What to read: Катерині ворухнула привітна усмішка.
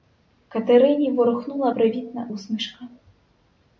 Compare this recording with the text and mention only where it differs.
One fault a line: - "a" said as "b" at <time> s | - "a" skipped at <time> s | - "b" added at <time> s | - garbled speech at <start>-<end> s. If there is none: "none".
none